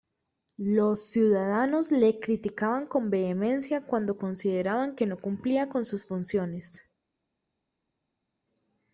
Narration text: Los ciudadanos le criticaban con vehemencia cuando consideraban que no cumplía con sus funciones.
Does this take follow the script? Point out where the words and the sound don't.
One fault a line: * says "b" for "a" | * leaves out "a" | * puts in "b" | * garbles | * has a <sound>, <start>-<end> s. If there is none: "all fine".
all fine